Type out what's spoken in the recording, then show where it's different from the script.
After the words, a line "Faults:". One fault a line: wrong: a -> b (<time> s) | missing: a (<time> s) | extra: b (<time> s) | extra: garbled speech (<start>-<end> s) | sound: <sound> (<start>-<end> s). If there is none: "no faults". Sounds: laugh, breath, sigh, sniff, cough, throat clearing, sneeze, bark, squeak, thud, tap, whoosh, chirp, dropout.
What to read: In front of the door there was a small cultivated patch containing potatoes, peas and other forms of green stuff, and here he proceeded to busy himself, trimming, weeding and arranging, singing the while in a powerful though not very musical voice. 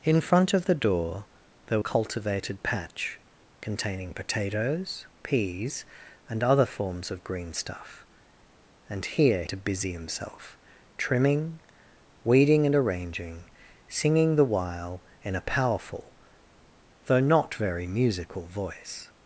In front of the door there cultivated patch containing potatoes, peas and other forms of green stuff, and here to busy himself, trimming, weeding and arranging, singing the while in a powerful though not very musical voice.
Faults:
missing: was a small (1.8 s)
missing: he proceeded (9.4 s)